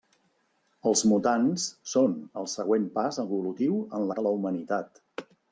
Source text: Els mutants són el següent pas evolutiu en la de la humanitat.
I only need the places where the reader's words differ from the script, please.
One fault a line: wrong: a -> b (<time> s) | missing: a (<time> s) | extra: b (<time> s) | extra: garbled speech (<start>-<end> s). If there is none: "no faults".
no faults